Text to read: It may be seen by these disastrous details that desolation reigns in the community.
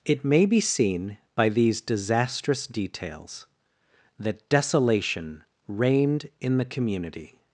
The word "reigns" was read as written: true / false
false